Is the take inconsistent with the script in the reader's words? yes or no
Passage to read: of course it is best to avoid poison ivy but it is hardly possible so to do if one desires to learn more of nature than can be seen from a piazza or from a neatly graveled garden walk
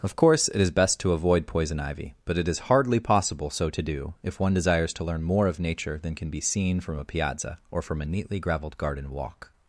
no